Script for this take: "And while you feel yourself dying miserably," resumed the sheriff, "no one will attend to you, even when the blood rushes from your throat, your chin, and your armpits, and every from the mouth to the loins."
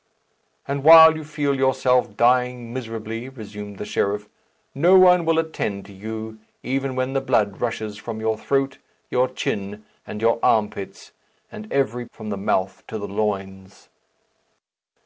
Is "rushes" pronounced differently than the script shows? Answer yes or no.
no